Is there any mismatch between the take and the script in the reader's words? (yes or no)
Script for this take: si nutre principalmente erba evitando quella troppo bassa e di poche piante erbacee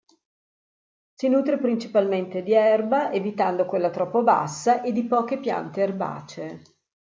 yes